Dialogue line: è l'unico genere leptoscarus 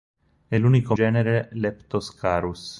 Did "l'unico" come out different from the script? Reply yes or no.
no